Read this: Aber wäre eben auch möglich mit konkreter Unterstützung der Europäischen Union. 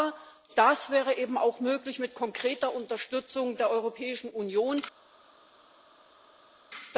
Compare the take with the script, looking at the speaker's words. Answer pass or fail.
fail